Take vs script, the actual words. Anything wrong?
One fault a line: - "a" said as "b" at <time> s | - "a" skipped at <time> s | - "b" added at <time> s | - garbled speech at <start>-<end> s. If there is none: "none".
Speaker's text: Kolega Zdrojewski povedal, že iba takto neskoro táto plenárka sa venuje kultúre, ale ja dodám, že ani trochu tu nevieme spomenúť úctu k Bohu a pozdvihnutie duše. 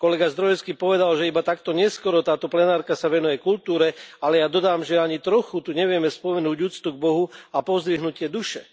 none